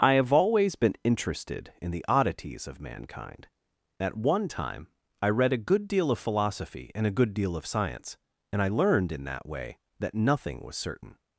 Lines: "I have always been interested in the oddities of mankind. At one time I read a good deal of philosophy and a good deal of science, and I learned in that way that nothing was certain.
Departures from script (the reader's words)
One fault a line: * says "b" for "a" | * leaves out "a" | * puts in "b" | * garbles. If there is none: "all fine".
all fine